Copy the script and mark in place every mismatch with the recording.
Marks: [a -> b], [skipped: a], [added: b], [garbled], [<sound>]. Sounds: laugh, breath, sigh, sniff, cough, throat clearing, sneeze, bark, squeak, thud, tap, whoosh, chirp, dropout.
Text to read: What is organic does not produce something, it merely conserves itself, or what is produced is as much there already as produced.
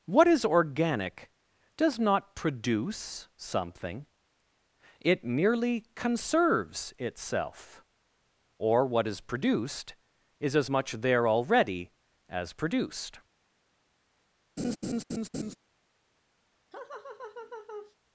What is organic does not produce something, it merely conserves itself, or what is produced is as much there already as produced. [laugh] [laugh]